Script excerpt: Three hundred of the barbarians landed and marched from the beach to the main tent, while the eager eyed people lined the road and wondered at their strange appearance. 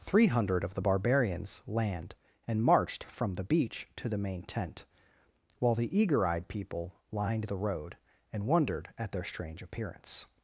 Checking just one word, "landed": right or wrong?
wrong